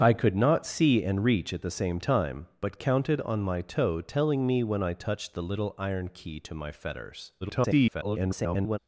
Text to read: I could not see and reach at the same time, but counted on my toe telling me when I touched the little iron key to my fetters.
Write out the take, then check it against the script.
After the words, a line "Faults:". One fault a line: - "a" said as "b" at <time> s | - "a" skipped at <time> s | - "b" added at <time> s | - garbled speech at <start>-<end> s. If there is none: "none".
I could not see and reach at the same time, but counted on my toe telling me when I touched the little iron key to my fetters. [garbled]
Faults:
- garbled speech at 7.4-8.8 s